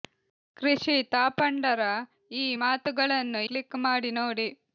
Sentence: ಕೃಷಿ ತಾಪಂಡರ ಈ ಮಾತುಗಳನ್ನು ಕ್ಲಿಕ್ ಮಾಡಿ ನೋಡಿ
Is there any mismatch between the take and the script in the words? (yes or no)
no